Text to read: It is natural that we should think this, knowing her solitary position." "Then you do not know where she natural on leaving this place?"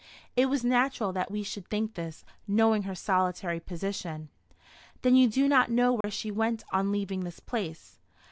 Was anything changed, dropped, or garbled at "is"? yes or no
yes